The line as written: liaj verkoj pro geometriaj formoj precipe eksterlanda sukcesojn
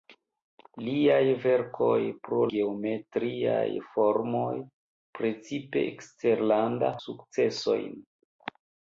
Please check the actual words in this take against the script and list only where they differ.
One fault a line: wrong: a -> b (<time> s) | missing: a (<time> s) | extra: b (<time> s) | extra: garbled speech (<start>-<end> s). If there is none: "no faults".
no faults